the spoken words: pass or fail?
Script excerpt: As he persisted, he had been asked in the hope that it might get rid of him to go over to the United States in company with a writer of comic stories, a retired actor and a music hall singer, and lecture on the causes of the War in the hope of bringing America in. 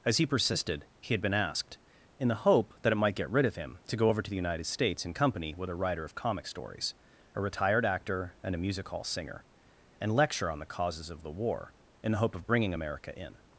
pass